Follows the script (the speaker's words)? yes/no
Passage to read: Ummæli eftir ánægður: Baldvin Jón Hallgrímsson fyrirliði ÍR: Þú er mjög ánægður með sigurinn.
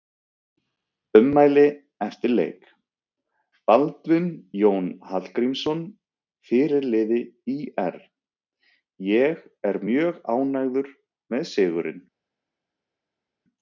no